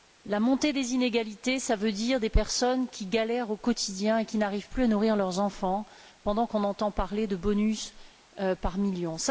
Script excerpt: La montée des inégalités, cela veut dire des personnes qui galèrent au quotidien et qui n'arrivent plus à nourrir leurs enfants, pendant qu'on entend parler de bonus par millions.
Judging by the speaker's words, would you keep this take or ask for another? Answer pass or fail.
pass